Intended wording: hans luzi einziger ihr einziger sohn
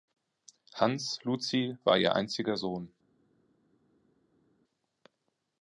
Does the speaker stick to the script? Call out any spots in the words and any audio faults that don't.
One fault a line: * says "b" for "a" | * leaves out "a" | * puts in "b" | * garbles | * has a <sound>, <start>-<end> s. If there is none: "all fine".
* says "war" for "einziger"